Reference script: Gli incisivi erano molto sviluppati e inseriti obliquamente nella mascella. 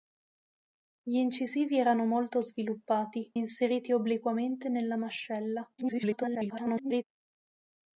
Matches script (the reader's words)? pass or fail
fail